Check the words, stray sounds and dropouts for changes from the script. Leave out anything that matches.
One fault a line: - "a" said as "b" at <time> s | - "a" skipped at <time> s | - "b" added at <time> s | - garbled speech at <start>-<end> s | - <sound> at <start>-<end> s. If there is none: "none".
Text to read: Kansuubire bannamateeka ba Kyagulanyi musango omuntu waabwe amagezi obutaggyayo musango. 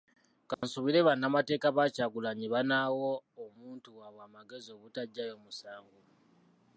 - dropout at 0.5-0.6 s
- "musango" said as "banaawa" at 2.5 s